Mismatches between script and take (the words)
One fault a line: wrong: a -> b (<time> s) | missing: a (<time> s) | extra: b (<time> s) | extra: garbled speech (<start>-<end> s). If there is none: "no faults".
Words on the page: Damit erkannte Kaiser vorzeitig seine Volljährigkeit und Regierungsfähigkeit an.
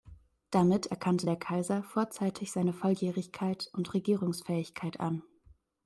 extra: der (1.2 s)